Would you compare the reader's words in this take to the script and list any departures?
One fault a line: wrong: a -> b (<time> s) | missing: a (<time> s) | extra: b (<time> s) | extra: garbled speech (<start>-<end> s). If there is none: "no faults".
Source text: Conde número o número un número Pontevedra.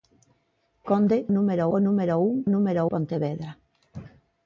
no faults